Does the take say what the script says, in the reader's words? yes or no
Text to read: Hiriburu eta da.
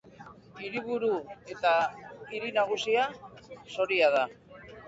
no